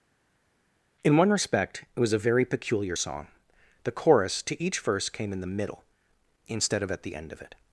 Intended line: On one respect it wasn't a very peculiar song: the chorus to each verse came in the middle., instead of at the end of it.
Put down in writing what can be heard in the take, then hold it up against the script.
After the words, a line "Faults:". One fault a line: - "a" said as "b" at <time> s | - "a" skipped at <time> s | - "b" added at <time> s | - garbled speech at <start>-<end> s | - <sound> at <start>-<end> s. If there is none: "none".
In one respect it was a very peculiar song: the chorus to each verse came in the middle., instead of at the end of it.
Faults:
- "On" said as "In" at 1.0 s
- "wasn't" said as "was" at 2.0 s